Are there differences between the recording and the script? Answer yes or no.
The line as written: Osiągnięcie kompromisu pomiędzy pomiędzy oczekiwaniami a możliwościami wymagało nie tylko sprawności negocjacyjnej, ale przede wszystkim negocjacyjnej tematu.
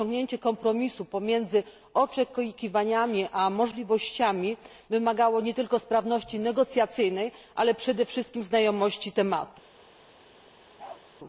yes